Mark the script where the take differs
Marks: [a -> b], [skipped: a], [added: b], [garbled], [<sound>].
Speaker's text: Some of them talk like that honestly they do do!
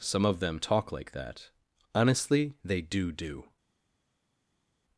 Some of them talk like that honestly they do do!